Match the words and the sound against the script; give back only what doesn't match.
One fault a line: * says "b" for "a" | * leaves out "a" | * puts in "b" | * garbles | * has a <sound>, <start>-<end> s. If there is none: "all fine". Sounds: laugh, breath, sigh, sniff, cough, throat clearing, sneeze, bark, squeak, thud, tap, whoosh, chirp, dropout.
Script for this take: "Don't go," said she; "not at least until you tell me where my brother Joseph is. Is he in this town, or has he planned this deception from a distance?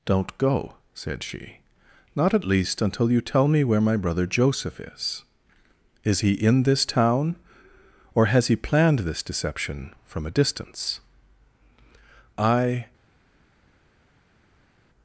* puts in "I"